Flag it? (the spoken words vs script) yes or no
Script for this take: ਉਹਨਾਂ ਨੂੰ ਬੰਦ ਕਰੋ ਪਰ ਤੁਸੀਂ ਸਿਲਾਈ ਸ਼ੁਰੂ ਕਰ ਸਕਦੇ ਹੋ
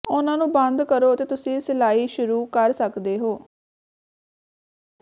yes